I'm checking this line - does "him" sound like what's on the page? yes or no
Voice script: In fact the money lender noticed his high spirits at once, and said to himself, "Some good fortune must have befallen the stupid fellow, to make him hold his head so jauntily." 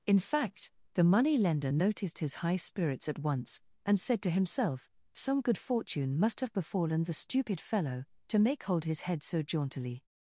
no